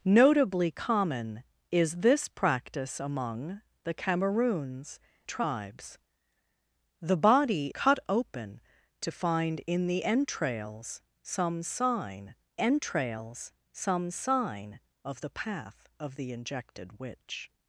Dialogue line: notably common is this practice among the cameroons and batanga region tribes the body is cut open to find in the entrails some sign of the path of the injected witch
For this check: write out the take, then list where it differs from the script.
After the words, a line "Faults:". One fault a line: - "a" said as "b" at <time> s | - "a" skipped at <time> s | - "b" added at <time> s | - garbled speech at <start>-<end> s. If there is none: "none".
notably common is this practice among the cameroons tribes the body cut open to find in the entrails some sign entrails some sign of the path of the injected witch
Faults:
- "and batanga region" skipped at 5.0 s
- "is" skipped at 7.7 s
- "entrails some sign" added at 12.6 s